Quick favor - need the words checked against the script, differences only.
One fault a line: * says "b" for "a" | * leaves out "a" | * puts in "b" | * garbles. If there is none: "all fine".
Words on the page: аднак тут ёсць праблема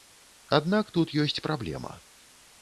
all fine